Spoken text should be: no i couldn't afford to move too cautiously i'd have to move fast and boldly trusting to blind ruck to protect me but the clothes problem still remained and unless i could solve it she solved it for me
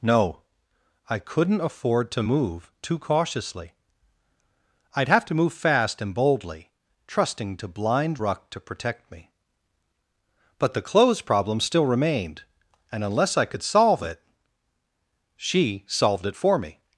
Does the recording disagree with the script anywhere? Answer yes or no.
no